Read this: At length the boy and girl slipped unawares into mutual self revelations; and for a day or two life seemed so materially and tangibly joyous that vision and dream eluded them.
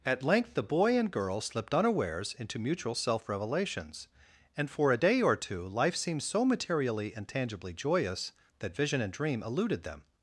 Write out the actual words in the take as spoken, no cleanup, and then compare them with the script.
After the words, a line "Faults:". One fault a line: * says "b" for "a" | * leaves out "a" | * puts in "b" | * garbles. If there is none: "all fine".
At length the boy and girl slipped unawares into mutual self revelations; and for a day or two life seemed so materially and tangibly joyous that vision and dream eluded them.
Faults:
all fine